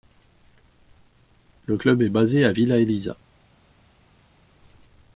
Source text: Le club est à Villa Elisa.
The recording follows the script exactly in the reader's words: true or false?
false